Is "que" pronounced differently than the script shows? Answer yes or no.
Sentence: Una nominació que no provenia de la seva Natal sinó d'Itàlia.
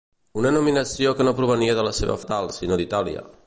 no